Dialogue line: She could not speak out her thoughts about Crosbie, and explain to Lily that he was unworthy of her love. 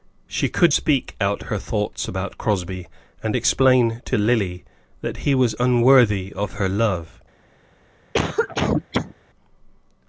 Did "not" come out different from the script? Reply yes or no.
yes